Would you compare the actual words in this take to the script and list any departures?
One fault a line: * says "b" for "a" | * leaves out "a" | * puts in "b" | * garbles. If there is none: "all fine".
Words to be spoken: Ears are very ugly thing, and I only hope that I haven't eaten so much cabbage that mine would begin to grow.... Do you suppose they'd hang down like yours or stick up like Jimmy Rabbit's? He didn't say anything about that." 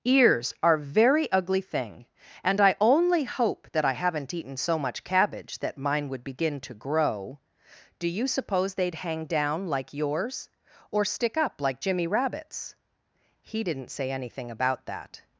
all fine